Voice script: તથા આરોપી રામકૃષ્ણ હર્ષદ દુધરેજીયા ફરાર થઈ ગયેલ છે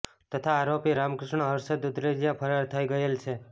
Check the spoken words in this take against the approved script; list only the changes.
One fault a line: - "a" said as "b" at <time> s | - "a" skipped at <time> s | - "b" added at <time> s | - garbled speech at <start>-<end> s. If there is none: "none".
none